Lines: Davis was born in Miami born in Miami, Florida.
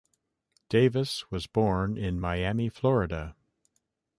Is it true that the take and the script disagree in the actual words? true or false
true